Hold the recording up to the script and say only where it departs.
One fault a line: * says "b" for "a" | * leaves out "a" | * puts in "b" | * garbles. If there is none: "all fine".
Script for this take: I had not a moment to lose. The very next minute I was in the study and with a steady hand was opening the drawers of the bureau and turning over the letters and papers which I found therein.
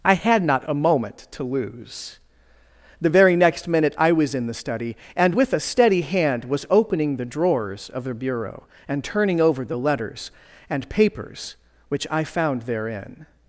all fine